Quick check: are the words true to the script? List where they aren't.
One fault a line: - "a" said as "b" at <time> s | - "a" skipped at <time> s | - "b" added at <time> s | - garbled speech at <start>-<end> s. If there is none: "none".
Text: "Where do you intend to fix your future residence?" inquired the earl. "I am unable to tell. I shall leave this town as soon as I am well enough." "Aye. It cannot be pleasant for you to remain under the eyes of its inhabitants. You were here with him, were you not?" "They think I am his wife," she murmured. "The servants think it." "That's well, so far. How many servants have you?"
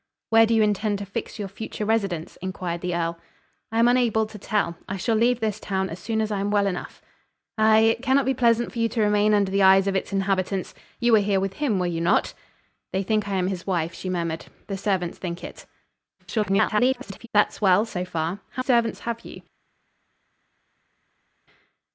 - garbled speech at 16.2-17.3 s
- "many" skipped at 18.6 s